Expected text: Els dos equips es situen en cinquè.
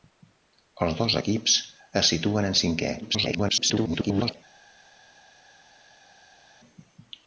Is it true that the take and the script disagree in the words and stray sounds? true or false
true